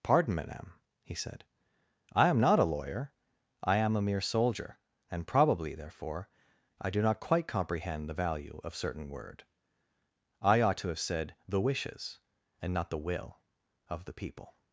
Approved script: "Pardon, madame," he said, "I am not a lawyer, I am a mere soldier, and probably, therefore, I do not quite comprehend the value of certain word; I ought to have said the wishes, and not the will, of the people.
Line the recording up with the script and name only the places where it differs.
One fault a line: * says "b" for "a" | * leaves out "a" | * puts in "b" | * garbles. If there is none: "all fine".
all fine